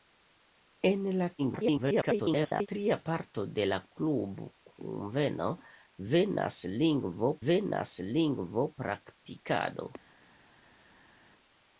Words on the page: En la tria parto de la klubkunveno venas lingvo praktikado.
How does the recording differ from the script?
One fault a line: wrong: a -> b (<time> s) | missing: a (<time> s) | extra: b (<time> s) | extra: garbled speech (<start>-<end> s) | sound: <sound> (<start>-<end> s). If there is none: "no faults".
extra: garbled speech (1.4-2.7 s)
extra: venas lingvo (7.5 s)